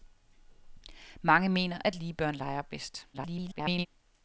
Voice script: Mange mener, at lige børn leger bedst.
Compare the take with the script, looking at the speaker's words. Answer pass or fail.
fail